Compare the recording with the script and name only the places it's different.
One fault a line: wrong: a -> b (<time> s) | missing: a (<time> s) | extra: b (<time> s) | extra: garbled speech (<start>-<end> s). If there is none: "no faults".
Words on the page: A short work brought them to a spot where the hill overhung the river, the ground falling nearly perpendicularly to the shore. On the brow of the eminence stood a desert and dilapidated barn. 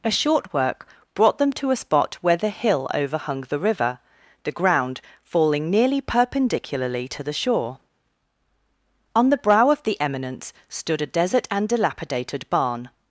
no faults